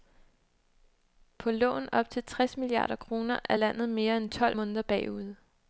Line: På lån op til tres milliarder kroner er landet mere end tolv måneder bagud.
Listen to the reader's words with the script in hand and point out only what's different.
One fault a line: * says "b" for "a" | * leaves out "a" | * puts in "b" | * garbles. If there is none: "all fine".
all fine